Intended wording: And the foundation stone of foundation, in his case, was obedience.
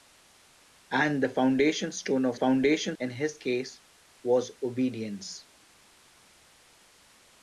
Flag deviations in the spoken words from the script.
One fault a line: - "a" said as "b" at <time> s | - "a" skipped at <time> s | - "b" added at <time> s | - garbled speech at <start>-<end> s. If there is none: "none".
none